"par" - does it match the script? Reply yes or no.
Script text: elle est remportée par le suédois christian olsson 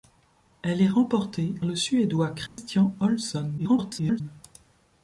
no